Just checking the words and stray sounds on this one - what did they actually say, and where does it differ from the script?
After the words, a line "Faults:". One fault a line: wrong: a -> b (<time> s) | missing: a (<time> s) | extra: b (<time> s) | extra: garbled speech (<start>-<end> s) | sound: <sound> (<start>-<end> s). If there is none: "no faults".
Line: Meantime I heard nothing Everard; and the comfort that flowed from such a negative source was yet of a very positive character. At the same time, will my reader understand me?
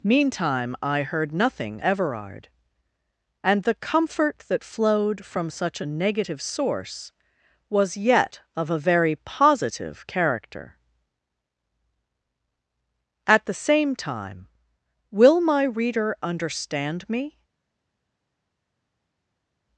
Meantime I heard nothing Everard; and the comfort that flowed from such a negative source was yet of a very positive character. At the same time, will my reader understand me?
Faults:
no faults